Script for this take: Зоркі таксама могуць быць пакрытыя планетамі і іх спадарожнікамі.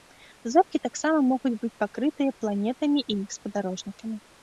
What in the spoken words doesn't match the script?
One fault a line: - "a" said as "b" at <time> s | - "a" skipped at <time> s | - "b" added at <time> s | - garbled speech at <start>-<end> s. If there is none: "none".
none